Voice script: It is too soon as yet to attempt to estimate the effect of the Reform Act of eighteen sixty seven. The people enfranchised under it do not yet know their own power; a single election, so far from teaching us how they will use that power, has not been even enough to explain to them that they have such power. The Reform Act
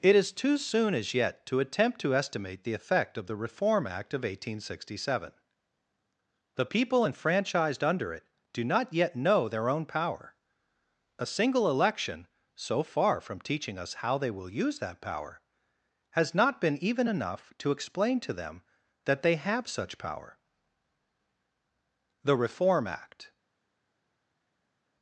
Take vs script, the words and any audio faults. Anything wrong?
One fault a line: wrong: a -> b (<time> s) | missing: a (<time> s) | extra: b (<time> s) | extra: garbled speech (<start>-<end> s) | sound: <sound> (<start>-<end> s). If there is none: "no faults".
no faults